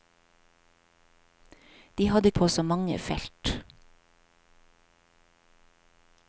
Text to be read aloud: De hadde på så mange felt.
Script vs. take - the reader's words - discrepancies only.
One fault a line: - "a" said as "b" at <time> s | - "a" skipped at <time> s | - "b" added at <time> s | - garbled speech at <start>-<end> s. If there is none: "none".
none